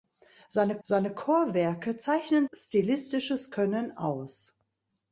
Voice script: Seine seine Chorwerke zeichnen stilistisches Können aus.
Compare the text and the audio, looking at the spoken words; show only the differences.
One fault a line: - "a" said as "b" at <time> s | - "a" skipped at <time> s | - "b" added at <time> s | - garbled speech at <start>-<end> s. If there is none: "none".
none